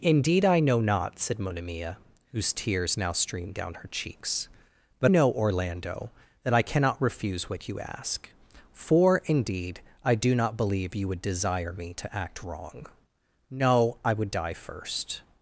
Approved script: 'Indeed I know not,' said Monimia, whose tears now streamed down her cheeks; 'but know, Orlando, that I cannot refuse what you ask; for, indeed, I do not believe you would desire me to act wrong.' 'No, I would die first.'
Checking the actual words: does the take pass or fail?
pass